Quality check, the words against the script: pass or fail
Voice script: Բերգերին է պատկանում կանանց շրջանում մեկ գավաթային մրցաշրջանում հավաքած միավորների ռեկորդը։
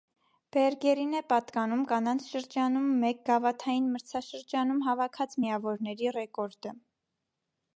pass